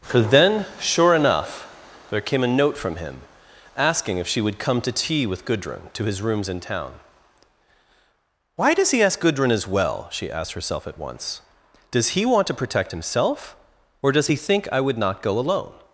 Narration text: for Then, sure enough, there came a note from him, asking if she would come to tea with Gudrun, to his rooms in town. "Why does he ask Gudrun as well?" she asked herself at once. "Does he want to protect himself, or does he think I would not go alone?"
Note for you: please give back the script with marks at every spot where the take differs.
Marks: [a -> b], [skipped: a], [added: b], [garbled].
for Then, sure enough, there came a note from him, asking if she would come to tea with Gudrun, to his rooms in town. "Why does he ask Gudrun as well?" she asked herself at once. "Does he want to protect himself, or does he think I would not go alone?"